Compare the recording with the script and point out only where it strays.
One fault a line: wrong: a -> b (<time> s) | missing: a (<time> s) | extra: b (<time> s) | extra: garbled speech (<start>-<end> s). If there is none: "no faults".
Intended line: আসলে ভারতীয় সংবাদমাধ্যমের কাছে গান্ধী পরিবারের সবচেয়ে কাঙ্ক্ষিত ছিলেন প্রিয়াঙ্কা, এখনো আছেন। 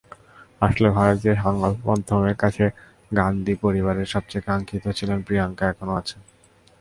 no faults